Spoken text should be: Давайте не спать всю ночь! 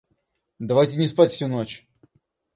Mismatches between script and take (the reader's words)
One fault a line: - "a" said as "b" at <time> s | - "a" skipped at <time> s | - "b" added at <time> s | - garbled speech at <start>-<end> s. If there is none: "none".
none